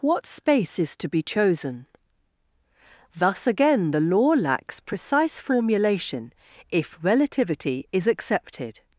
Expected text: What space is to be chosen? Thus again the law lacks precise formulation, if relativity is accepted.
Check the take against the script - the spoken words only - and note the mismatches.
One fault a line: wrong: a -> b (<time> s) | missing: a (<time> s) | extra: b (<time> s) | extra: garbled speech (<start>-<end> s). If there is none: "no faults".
no faults